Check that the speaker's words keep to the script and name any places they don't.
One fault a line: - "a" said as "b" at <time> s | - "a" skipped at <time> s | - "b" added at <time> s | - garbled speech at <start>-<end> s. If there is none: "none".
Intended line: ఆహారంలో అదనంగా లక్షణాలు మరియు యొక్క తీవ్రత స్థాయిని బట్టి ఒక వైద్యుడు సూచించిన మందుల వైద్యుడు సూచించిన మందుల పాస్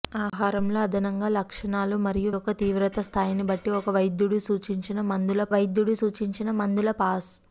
none